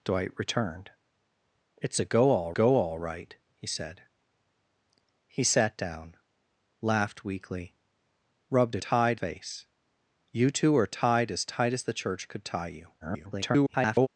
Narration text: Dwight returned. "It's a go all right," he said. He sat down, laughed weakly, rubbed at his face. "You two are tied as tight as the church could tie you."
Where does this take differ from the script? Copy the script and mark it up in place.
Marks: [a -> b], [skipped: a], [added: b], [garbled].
Dwight returned. "It's a go all [added: go all] right," he said. He sat down, laughed weakly, rubbed at [his -> tied] face. "You two are tied as tight as the church could tie you." [garbled]